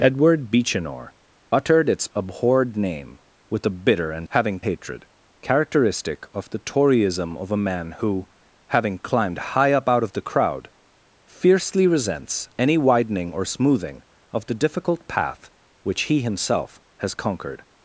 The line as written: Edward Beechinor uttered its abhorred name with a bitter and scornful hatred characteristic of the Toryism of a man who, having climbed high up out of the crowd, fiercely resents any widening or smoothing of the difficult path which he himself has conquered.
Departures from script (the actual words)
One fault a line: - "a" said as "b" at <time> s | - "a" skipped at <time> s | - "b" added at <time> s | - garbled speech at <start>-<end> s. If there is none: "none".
- "scornful" said as "having" at 4.3 s